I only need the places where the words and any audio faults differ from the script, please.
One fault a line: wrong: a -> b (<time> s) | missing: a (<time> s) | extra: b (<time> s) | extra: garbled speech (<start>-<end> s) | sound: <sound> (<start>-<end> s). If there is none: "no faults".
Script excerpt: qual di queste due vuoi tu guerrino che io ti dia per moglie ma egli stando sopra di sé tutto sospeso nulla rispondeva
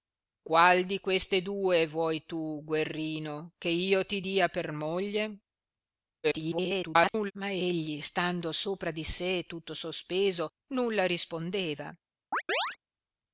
extra: garbled speech (6.2-7.3 s)
sound: chirp (12.3-12.8 s)